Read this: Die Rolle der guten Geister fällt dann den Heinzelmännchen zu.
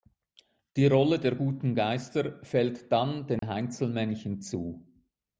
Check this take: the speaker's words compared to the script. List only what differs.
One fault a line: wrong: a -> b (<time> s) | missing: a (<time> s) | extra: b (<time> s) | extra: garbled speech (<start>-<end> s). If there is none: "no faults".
no faults